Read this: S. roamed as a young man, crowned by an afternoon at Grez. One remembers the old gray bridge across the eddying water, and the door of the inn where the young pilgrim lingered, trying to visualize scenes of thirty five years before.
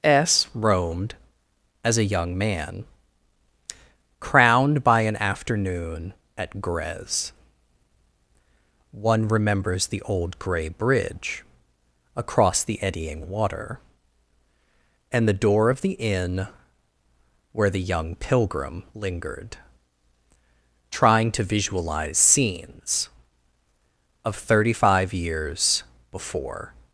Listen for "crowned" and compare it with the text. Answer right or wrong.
right